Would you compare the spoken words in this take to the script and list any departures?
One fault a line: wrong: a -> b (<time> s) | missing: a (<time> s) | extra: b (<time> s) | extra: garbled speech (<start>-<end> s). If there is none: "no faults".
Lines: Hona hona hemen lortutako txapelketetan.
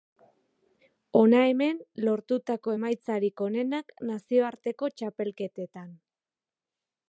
missing: hona (1.4 s)
extra: emaitzarik onenak nazioarteko (2.8 s)